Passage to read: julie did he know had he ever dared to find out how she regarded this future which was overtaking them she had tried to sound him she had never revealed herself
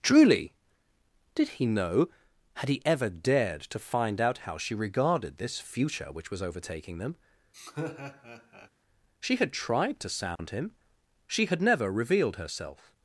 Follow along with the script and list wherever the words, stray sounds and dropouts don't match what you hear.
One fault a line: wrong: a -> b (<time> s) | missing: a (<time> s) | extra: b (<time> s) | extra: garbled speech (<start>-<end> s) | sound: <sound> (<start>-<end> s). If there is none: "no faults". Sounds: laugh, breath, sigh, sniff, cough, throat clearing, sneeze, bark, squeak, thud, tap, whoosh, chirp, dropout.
wrong: julie -> truly (0.0 s)
sound: laugh (7.5-8.7 s)
sound: dropout (10.4-10.4 s)